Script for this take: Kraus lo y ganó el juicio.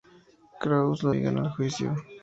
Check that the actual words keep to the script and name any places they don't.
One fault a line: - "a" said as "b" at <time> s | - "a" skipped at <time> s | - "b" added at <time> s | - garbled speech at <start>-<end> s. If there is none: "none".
none